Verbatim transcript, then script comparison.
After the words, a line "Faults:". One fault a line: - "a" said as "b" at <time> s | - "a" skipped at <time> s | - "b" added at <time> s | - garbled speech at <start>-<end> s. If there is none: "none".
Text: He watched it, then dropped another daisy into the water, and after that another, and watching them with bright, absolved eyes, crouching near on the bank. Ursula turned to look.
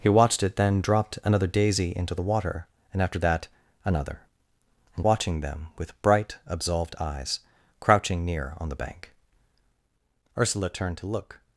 He watched it, then dropped another daisy into the water, and after that another, and watching them with bright, absolved eyes, crouching near on the bank. Ursula turned to look.
Faults:
none